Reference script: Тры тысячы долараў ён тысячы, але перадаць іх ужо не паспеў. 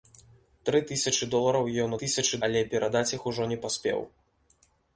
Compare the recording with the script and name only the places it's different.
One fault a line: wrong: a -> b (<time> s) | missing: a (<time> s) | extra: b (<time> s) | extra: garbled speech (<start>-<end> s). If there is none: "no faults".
no faults